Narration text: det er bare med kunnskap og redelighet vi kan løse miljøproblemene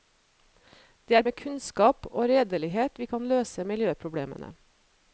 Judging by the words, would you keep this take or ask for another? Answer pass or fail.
fail